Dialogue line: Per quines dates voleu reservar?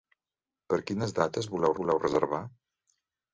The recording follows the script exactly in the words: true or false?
false